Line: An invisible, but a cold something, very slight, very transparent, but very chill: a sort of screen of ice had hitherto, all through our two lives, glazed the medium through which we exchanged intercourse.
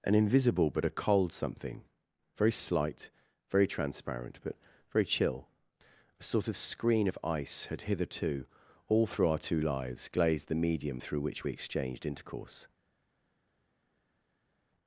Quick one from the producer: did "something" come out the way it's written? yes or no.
yes